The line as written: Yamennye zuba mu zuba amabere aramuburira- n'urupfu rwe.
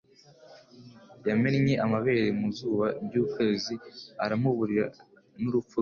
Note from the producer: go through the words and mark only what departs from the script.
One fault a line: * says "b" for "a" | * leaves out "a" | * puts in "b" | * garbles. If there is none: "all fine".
* says "amabere" for "zuba"
* says "ry'ukwezi" for "amabere"